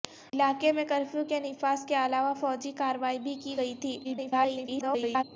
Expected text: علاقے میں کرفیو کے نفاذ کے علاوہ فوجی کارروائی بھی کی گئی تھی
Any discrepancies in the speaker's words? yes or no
yes